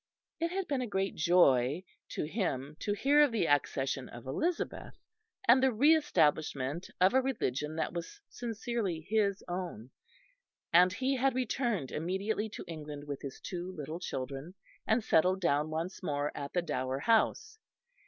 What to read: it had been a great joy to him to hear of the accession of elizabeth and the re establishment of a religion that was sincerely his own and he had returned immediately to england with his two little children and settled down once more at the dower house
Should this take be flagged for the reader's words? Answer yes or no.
no